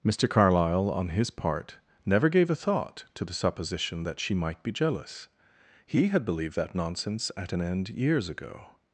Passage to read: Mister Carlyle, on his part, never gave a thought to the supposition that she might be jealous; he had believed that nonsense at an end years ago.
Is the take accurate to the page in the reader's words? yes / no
yes